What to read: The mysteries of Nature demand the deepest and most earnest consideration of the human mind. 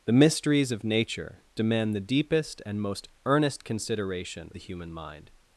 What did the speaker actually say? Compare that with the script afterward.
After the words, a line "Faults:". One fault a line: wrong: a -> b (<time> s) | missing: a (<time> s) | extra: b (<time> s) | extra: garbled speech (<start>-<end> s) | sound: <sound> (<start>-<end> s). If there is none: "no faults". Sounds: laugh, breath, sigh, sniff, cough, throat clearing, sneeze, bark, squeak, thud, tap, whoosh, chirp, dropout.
The mysteries of Nature demand the deepest and most earnest consideration the human mind.
Faults:
missing: of (4.5 s)